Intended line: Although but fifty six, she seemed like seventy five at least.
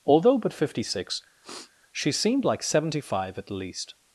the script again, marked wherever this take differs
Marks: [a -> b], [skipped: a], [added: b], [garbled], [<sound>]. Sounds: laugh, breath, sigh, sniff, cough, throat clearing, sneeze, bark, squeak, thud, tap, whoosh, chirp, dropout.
Although but fifty six, [sniff] she seemed like seventy five at least.